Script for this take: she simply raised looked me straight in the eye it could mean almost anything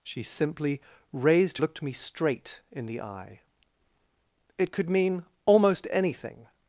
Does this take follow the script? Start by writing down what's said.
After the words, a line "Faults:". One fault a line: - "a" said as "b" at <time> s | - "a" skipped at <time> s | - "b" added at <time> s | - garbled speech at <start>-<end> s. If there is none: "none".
she simply raised looked me straight in the eye it could mean almost anything
Faults:
none